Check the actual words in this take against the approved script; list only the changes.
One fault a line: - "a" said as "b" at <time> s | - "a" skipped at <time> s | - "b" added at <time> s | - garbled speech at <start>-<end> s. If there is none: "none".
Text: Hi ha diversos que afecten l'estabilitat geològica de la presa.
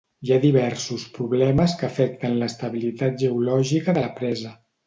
- "problemes" added at 1.2 s